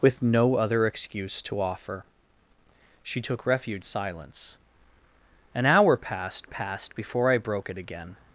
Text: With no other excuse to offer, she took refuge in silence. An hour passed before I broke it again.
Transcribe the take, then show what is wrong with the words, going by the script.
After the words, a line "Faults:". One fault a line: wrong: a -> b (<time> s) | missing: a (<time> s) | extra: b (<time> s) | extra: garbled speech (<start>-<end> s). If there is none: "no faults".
With no other excuse to offer, she took refuge silence. An hour passed passed before I broke it again.
Faults:
missing: in (3.9 s)
extra: passed (6.4 s)